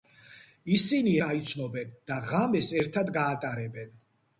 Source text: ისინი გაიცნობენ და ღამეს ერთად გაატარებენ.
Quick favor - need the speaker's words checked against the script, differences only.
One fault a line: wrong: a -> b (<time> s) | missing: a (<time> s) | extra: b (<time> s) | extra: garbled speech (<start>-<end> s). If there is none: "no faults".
no faults